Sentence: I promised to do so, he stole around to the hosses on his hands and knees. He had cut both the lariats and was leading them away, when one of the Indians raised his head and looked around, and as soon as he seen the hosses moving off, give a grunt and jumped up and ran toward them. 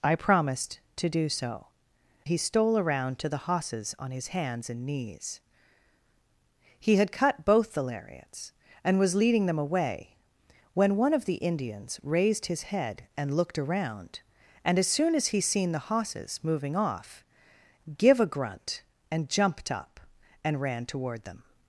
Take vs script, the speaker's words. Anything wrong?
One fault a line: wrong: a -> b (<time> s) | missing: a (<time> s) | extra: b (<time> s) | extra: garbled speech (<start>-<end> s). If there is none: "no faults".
no faults